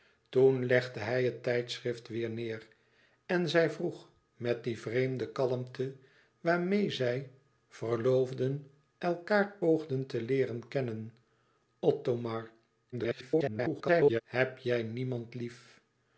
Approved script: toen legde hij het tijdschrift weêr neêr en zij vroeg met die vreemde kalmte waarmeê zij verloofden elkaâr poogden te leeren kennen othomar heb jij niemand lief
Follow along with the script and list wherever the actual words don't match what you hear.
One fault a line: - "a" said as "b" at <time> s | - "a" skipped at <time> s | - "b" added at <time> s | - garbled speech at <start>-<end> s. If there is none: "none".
- garbled speech at 12.9-14.2 s